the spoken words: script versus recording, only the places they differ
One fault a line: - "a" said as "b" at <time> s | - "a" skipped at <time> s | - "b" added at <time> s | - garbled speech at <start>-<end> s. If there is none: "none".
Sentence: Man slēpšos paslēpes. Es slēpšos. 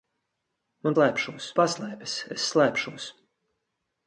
none